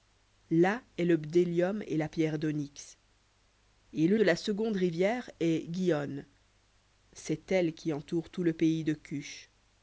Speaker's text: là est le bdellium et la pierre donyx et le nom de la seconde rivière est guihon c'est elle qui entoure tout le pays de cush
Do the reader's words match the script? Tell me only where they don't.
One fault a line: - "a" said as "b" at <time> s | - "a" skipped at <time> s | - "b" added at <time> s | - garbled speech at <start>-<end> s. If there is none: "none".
- "nom" skipped at 4.2 s